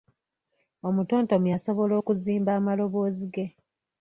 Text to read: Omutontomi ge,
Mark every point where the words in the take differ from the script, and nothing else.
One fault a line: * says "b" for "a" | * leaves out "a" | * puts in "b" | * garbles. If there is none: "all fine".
* puts in "asobola okuzimba amaloboozi"